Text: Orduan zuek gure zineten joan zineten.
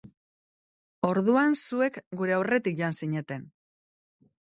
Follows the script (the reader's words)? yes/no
no